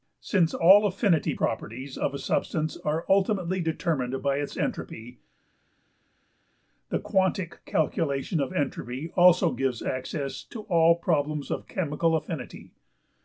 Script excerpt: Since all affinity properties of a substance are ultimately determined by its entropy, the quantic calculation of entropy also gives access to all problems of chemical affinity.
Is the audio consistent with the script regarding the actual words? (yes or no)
yes